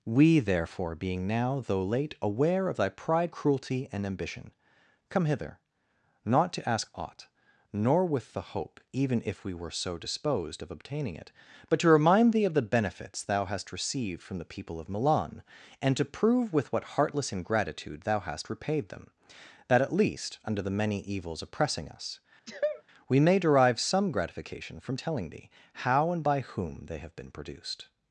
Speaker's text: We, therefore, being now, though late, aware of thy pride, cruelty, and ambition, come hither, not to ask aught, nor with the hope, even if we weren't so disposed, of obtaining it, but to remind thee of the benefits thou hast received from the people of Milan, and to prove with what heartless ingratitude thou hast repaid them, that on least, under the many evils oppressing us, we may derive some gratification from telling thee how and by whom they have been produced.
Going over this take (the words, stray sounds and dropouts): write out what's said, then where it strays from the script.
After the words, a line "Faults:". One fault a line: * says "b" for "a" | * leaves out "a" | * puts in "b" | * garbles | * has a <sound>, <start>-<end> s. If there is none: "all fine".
We, therefore, being now, though late, aware of thy pride, cruelty, and ambition, come hither, not to ask aught, nor with the hope, even if we were so disposed, of obtaining it, but to remind thee of the benefits thou hast received from the people of Milan, and to prove with what heartless ingratitude thou hast repaid them, that at least, under the many evils oppressing us, we may derive some gratification from telling thee how and by whom they have been produced.
Faults:
* says "were" for "weren't"
* says "at" for "on"
* has a sneeze, 22.5-22.8 s